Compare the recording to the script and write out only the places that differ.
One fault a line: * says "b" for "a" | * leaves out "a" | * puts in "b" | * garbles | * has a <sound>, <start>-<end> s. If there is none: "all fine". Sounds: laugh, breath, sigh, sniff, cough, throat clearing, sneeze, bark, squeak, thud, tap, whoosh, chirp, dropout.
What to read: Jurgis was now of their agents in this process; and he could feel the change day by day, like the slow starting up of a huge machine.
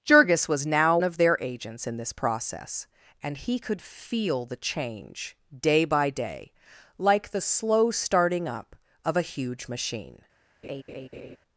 * has a laugh, 10.6-11.4 s